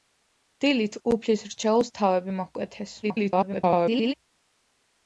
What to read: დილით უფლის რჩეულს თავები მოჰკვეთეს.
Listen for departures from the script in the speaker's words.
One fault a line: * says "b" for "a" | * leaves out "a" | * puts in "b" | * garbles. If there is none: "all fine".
* garbles